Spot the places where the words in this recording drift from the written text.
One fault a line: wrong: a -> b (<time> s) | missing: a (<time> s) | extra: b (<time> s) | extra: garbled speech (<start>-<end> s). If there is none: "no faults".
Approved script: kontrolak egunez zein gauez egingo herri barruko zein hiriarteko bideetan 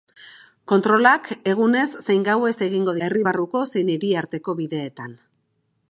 no faults